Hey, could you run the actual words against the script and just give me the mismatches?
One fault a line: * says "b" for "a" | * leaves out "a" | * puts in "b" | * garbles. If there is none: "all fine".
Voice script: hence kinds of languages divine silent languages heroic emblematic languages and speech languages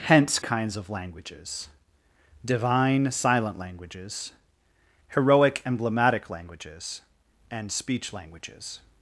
all fine